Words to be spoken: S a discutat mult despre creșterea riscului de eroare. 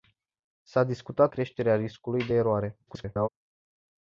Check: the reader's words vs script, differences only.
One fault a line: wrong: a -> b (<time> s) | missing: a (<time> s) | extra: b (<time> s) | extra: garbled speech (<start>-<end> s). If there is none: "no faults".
missing: mult despre (1.3 s)
extra: garbled speech (2.9-3.3 s)